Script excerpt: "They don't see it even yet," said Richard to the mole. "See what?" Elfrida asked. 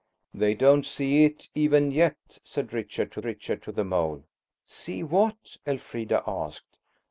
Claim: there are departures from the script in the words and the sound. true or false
true